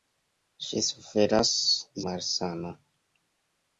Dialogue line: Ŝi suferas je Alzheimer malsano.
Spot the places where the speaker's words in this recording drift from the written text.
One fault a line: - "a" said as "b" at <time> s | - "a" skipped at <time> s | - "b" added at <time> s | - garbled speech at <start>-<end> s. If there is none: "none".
- "je Alzheimer" skipped at 1.5 s